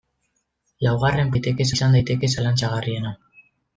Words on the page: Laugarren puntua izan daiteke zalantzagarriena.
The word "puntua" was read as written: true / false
false